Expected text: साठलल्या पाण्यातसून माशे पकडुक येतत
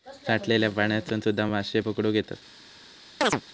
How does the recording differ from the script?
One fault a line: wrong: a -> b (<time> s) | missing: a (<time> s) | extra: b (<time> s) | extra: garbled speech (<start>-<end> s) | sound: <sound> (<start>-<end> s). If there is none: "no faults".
extra: सुध्दा (1.2 s)
sound: chirp (3.2-3.4 s)